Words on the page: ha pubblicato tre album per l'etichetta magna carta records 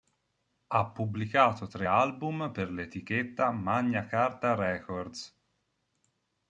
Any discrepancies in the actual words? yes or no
no